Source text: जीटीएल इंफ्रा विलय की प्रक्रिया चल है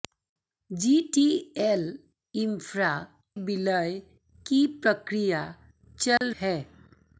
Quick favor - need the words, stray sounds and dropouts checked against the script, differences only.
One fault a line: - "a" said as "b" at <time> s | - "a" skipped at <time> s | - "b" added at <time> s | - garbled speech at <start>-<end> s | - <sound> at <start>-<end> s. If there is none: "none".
- dropout at 6.2-6.2 s